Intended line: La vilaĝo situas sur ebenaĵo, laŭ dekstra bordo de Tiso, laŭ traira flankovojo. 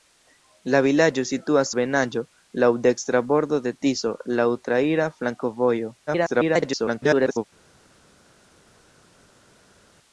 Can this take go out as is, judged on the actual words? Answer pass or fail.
fail